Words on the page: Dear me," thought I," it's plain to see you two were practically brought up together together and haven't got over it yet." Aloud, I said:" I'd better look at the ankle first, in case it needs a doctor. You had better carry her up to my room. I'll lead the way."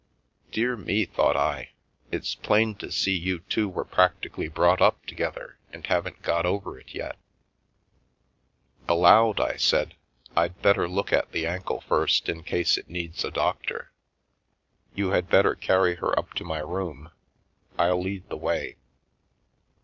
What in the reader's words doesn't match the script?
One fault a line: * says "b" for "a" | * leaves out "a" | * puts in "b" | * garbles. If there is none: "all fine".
* leaves out "together"